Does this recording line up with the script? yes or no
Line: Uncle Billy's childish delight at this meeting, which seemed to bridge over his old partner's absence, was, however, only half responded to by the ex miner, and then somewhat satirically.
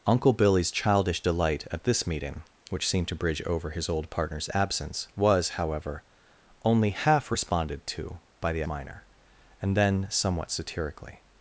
no